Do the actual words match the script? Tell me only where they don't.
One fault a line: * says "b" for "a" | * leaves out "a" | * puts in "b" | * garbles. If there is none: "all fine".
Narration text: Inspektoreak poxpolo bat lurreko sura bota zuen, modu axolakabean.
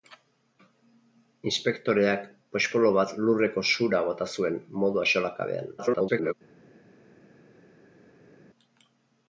* garbles